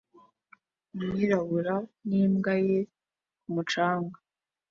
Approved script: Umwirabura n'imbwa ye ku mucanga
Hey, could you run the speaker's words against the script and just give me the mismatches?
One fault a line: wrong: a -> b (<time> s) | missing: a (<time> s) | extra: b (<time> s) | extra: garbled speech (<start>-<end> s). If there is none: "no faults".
no faults